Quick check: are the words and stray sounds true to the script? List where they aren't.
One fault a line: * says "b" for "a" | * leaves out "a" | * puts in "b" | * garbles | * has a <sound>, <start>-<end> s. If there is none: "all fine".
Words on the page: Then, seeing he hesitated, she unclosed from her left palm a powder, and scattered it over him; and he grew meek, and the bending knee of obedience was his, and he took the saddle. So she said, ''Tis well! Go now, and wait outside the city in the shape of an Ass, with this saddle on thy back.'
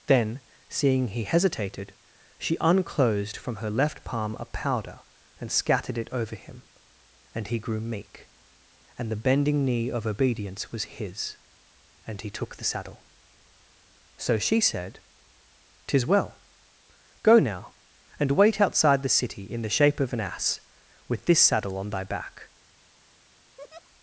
* has a laugh, 23.6-23.9 s